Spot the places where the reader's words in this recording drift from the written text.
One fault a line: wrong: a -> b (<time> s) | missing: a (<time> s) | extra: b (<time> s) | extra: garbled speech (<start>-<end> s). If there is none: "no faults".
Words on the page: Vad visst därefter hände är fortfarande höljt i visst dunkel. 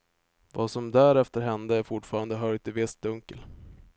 wrong: visst -> som (0.7 s)